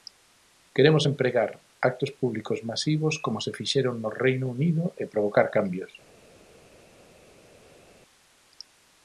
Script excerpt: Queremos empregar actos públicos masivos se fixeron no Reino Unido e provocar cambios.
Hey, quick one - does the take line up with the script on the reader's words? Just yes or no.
no